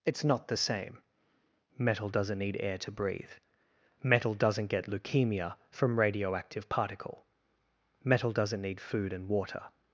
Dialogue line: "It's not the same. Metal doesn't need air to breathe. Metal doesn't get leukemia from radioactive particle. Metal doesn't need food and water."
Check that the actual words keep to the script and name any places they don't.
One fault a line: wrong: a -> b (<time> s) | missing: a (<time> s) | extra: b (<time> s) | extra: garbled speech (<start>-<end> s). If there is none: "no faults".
no faults